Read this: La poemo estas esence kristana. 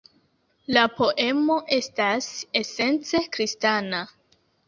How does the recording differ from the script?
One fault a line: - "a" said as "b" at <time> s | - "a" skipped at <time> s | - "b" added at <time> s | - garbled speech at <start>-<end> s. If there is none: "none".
none